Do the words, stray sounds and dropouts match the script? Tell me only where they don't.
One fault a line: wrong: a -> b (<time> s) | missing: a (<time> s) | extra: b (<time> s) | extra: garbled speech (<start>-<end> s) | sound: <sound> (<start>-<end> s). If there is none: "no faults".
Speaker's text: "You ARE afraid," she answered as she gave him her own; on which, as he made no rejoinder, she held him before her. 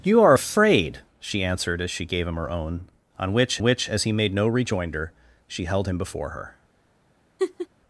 extra: which (3.6 s)
sound: laugh (7.4-7.7 s)